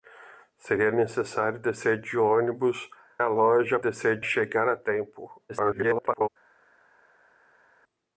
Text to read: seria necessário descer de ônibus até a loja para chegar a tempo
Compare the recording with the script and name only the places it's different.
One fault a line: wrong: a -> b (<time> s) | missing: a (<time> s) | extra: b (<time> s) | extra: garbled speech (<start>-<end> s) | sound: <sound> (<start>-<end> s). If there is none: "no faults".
missing: até (2.9 s)
wrong: para -> descer (3.8 s)
extra: garbled speech (5.5-6.3 s)